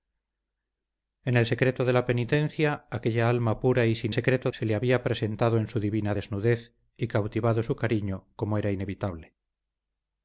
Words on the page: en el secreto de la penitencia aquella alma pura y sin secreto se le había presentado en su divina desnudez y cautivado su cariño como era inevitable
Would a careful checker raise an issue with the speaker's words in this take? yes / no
no